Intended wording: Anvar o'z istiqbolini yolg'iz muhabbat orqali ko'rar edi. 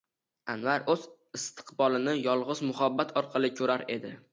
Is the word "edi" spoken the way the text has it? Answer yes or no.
yes